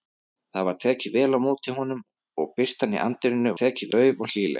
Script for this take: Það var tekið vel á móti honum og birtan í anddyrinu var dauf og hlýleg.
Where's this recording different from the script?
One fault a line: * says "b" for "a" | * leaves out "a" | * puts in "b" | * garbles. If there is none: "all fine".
* says "tekið" for "var"